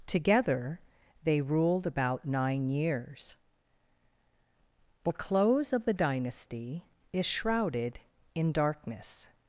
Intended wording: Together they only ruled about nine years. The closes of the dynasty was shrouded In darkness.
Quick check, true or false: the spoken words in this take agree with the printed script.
false